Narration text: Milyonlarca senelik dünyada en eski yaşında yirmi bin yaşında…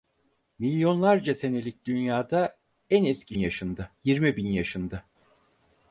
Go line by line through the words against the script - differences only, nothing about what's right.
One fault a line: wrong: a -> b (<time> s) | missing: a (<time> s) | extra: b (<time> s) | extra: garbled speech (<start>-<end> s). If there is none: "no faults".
no faults